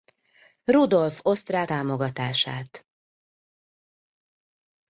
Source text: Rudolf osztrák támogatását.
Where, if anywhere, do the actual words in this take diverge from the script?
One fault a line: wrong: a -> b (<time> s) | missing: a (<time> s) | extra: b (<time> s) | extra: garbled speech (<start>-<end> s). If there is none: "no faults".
no faults